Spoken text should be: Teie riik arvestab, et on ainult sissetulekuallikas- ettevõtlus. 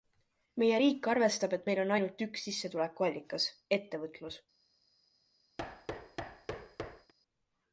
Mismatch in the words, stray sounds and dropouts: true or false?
true